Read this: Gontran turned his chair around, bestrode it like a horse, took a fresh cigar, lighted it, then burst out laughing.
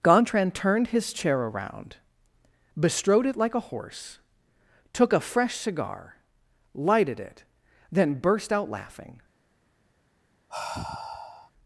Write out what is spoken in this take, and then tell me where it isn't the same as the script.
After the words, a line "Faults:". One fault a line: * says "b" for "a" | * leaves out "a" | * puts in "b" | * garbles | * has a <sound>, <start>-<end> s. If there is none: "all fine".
Gontran turned his chair around, bestrode it like a horse, took a fresh cigar, lighted it, then burst out laughing.
Faults:
* has a sigh, 10.5-11.5 s